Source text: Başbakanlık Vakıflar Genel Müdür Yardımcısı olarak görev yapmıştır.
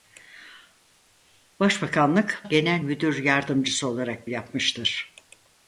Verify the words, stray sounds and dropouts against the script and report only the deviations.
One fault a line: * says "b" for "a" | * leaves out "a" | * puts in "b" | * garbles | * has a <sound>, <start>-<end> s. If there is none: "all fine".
* leaves out "Vakıflar"
* leaves out "görev"